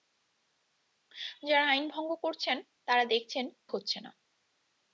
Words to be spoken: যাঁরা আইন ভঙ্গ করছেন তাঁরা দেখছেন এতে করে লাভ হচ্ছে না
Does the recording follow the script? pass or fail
fail